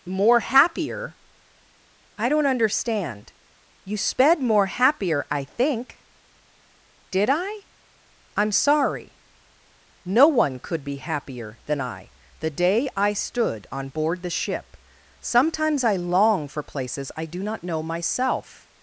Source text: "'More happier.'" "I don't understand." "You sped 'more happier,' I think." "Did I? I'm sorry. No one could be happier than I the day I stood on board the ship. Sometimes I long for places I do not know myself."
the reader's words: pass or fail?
pass